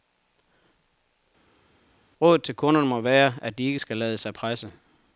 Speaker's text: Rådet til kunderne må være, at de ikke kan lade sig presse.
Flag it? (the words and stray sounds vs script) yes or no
yes